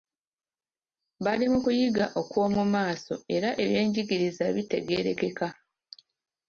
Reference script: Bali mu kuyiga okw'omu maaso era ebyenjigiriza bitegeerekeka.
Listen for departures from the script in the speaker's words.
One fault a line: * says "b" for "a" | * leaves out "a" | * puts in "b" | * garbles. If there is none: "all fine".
all fine